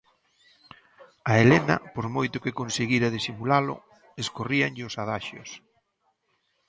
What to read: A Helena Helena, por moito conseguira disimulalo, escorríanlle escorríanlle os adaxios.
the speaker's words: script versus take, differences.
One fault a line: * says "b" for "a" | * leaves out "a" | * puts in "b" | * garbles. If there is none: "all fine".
* leaves out "Helena"
* puts in "que"
* leaves out "escorríanlle"